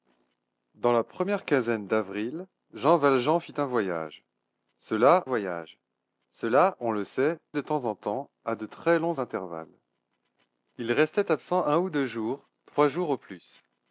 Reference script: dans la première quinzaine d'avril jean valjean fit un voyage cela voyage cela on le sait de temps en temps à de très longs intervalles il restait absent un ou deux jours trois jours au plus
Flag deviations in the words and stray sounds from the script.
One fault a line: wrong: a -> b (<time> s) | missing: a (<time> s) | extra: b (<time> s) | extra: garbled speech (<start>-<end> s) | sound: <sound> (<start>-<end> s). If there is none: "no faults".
no faults